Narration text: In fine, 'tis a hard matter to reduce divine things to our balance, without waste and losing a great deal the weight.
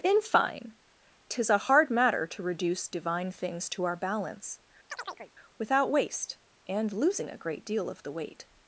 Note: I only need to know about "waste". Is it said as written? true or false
true